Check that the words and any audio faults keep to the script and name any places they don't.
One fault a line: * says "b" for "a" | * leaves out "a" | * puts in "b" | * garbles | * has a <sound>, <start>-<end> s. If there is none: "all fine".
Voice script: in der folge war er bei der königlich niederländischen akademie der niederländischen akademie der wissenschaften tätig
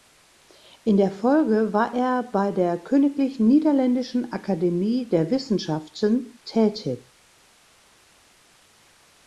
* leaves out "niederländischen akademie der"